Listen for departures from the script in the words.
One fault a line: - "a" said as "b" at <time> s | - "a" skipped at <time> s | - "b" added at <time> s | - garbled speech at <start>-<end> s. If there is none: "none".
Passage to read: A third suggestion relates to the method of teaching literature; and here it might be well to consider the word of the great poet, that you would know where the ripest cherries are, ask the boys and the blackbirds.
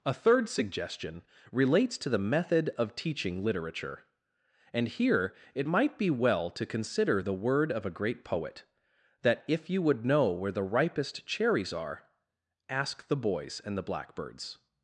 - "the" said as "a" at 7.8 s
- "if" added at 9.5 s